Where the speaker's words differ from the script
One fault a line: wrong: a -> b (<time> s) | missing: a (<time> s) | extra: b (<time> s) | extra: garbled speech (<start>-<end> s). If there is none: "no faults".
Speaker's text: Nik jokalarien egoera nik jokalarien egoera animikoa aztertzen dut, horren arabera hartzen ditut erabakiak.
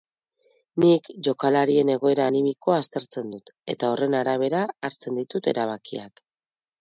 missing: nik jokalarien egoera (2.2 s)
extra: eta (3.8 s)